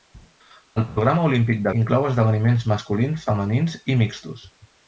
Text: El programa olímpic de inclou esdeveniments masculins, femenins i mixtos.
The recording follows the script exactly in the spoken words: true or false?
true